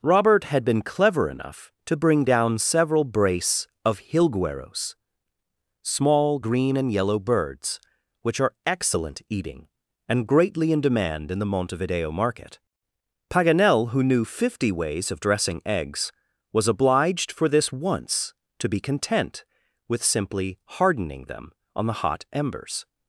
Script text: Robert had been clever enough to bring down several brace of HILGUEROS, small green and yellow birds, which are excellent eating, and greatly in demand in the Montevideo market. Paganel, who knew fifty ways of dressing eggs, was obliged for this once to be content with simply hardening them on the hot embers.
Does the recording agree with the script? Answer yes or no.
yes